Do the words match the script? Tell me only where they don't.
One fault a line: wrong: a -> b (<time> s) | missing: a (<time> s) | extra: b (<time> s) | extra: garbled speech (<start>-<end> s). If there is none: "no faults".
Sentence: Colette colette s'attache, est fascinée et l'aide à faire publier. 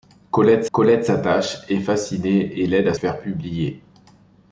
no faults